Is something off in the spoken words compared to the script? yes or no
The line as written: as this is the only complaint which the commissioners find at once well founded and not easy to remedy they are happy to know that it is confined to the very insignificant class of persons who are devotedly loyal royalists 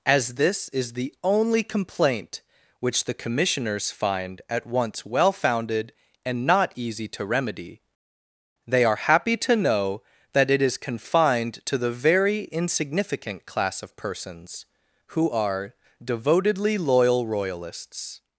no